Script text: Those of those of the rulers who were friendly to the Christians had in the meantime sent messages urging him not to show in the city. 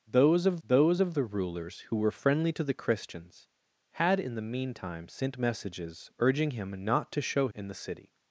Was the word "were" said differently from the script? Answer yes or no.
no